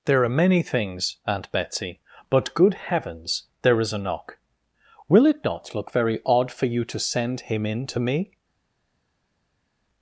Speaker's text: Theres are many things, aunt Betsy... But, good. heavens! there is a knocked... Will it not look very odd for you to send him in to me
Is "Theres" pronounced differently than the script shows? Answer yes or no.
yes